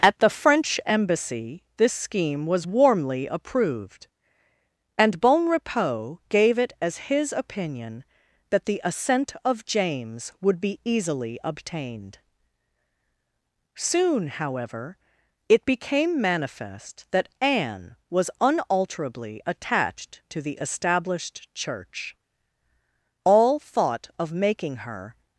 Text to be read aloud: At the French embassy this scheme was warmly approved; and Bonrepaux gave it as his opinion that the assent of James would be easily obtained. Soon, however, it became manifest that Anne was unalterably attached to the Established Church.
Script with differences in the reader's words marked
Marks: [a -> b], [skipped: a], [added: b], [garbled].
At the French embassy this scheme was warmly approved; and Bonrepaux gave it as his opinion that the assent of James would be easily obtained. Soon, however, it became manifest that Anne was unalterably attached to the Established Church. [added: All thought of making her]